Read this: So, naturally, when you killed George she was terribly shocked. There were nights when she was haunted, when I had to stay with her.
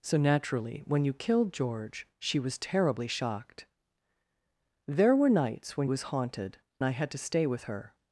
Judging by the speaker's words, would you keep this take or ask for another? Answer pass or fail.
fail